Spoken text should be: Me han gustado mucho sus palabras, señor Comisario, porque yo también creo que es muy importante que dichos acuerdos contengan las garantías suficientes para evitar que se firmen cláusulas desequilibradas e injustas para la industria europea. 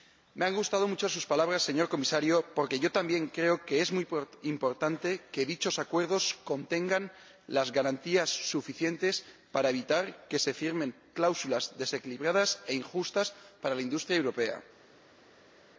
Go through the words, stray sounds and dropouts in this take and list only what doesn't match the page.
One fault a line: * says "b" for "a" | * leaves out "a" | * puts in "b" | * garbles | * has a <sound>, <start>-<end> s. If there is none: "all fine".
all fine